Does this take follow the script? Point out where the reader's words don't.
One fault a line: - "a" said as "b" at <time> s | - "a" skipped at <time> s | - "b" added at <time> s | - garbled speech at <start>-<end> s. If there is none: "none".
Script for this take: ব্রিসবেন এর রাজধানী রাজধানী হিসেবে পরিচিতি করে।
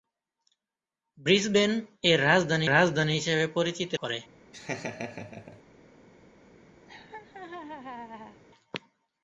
none